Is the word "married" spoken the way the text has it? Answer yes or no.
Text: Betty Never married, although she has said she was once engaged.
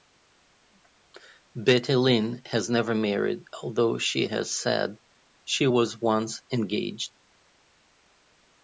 yes